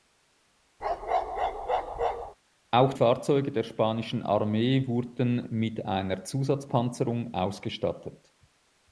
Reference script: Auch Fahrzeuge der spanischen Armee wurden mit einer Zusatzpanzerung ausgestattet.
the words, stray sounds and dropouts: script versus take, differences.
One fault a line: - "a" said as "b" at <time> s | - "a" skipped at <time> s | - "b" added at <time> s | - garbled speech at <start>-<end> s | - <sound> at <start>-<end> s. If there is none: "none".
- bark at 0.8-2.4 s